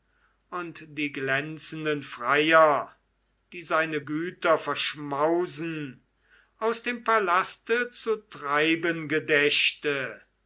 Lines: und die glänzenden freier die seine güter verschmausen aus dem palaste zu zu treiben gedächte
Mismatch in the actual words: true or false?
true